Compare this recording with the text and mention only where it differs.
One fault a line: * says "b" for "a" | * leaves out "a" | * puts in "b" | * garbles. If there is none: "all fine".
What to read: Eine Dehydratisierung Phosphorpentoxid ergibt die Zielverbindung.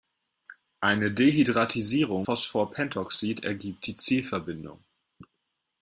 all fine